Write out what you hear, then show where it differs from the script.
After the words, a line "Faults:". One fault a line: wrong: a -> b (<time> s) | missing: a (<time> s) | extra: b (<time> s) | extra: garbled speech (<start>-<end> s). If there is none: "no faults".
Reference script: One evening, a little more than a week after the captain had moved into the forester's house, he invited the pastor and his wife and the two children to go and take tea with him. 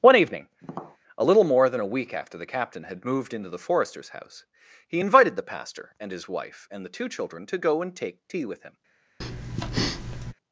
One evening, a little more than a week after the captain had moved into the forester's house, he invited the pastor and his wife and the two children to go and take tea with him.
Faults:
no faults